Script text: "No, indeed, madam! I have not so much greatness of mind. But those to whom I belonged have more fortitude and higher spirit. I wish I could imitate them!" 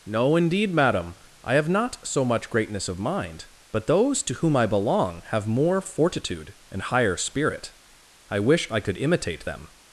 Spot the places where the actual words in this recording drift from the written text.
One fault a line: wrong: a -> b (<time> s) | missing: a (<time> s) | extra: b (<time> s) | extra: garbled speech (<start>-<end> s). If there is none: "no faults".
wrong: belonged -> belong (4.7 s)